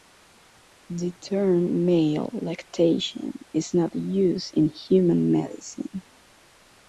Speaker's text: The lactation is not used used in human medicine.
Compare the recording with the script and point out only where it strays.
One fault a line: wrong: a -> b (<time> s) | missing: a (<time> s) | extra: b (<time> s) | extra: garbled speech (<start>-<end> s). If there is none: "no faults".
extra: term male (1.1 s)
missing: used (4.5 s)